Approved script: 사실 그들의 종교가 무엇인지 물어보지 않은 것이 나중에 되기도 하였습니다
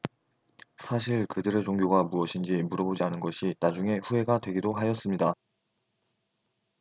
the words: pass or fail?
fail